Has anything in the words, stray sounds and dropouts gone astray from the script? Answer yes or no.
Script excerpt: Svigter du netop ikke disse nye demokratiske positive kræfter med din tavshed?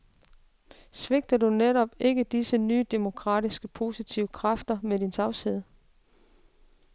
no